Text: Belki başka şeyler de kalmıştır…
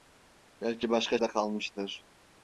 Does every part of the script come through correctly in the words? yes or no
no